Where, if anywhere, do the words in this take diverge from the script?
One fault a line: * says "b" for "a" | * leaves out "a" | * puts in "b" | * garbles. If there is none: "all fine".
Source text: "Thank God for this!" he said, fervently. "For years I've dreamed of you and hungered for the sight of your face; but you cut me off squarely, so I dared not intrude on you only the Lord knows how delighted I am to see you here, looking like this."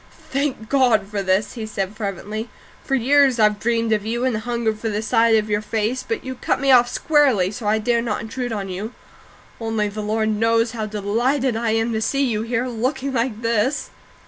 all fine